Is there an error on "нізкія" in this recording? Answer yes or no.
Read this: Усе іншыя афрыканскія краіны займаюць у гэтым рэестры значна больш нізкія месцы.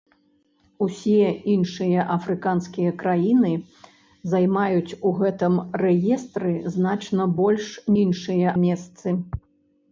yes